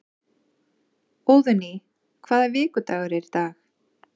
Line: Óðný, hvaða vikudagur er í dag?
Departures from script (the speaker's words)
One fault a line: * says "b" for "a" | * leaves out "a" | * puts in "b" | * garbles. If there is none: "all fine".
all fine